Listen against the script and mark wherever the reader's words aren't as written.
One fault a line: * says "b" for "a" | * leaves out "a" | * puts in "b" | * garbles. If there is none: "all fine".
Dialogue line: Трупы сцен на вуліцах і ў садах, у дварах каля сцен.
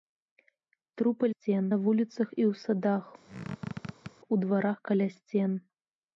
all fine